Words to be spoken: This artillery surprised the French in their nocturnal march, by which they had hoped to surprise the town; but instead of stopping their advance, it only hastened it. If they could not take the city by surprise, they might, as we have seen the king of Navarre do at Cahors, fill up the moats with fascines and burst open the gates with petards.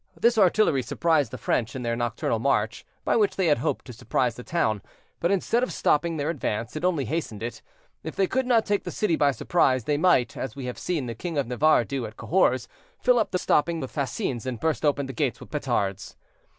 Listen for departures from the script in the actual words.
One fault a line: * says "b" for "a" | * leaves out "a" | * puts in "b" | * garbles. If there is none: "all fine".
* says "stopping" for "moats"